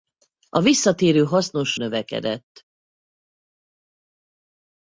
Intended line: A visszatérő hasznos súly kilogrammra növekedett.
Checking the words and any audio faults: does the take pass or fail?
fail